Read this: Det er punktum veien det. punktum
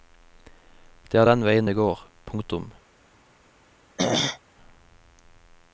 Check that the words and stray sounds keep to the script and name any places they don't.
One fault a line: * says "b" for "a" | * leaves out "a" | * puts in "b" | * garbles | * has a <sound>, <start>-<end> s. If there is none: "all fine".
* says "den" for "punktum"
* puts in "går"
* has a throat clearing, 4.0-4.4 s